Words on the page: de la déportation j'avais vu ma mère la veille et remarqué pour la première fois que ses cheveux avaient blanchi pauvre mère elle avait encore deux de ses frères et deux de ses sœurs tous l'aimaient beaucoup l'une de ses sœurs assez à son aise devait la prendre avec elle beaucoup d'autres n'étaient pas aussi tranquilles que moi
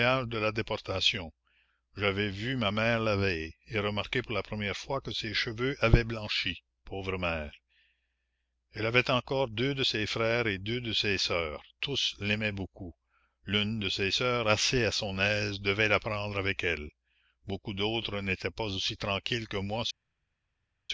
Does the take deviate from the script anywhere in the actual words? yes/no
no